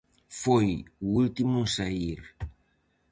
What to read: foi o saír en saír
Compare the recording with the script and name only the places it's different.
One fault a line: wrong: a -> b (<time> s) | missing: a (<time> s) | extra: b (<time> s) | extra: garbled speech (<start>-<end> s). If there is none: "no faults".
wrong: saír -> último (1.2 s)